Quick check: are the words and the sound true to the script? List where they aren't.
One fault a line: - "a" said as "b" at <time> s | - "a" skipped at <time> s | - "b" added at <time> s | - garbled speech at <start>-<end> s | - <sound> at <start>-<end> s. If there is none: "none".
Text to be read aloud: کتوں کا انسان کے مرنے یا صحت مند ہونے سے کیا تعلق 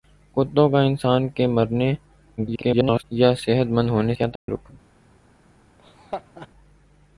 - garbled speech at 2.4-3.0 s
- "سے" skipped at 4.1 s
- dropout at 4.4-4.5 s
- laugh at 5.8-6.5 s